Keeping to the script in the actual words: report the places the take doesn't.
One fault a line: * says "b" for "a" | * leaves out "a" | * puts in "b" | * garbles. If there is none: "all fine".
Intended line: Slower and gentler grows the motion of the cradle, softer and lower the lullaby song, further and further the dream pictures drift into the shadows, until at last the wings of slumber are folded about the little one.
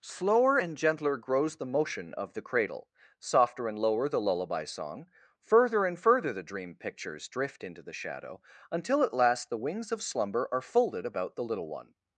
* says "shadow" for "shadows"